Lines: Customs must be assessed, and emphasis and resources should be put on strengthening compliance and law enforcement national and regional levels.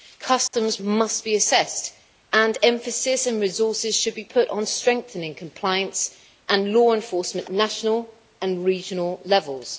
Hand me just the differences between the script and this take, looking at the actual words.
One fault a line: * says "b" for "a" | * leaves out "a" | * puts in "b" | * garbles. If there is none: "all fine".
all fine